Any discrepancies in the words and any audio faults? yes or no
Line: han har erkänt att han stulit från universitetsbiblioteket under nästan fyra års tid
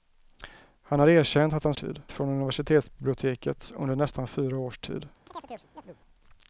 yes